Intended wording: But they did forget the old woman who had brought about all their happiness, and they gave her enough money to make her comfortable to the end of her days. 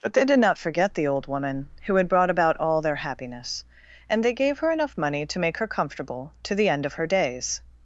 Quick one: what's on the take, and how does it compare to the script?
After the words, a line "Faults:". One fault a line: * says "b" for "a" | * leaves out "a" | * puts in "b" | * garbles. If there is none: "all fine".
But they did not forget the old woman who had brought about all their happiness, and they gave her enough money to make her comfortable to the end of her days.
Faults:
* puts in "not"